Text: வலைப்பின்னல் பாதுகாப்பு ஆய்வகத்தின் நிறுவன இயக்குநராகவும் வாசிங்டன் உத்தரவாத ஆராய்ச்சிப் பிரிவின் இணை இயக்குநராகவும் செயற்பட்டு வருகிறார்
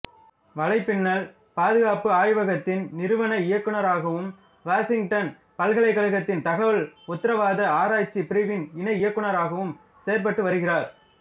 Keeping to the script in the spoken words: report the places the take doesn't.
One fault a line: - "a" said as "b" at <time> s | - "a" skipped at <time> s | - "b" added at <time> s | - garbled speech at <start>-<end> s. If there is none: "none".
- "பல்கலைக்கழகத்தின் தகவல்" added at 5.6 s